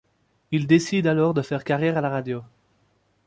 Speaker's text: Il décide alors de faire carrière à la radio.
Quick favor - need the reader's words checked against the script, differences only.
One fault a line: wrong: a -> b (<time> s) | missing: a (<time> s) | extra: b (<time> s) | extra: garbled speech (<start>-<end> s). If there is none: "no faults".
no faults